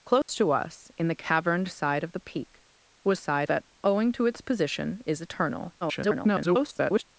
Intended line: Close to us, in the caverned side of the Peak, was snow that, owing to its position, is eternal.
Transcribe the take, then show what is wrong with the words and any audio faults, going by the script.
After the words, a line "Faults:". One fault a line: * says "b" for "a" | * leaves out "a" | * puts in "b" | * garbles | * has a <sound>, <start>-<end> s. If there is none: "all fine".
Close to us, in the caverned side of the Peak, was side that, owing to its position, is eternal. [garbled]
Faults:
* has a dropout, 0.2-0.3 s
* says "side" for "snow"
* garbles